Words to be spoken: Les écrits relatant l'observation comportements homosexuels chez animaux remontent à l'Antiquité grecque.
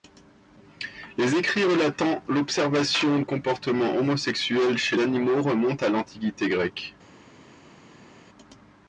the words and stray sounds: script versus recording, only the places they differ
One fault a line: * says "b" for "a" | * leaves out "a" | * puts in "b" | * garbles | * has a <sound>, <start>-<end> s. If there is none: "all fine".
all fine